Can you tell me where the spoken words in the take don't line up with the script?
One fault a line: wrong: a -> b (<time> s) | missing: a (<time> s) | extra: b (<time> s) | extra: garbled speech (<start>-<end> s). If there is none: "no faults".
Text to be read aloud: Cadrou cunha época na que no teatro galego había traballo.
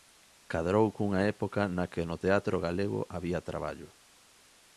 no faults